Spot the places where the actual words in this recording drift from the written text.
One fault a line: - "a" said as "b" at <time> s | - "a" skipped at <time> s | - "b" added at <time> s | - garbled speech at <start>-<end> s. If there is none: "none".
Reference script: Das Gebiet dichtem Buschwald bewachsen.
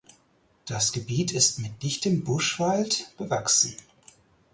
- "ist mit" added at 1.3 s